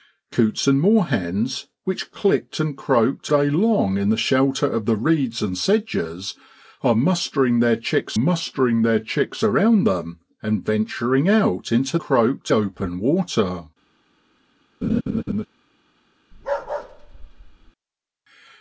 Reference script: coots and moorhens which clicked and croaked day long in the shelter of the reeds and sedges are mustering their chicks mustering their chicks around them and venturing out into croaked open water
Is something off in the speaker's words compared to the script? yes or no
no